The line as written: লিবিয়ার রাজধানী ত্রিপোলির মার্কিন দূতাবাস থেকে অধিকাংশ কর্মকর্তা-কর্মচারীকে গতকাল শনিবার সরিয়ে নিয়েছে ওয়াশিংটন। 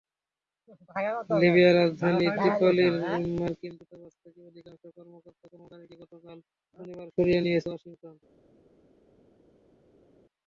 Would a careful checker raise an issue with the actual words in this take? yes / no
no